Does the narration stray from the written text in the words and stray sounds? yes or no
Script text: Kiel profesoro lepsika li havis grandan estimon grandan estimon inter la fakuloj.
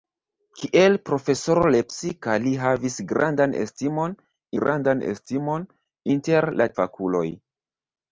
no